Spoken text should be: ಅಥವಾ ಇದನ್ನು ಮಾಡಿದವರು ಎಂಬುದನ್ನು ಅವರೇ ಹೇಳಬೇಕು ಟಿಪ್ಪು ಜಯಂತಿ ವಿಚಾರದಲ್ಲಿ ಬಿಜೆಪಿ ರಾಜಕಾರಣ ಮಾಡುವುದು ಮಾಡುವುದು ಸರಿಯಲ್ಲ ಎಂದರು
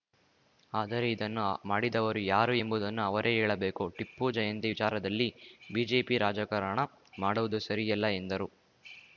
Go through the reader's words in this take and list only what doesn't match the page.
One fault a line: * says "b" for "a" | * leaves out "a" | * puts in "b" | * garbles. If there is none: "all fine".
* says "ಆದರೆ" for "ಅಥವಾ"
* puts in "ಯಾರು"
* leaves out "ಮಾಡುವುದು"